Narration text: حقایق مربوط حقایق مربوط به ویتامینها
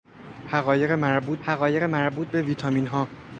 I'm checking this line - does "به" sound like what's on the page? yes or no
yes